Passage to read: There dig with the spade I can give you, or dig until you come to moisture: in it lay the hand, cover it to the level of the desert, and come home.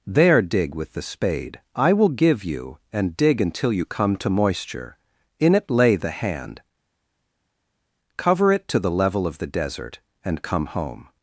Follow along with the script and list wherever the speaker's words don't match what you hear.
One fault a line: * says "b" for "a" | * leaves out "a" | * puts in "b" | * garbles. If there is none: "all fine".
* says "will" for "can"
* says "and" for "or"